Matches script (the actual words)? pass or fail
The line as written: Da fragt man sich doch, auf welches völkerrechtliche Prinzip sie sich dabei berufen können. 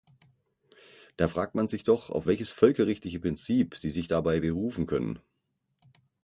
pass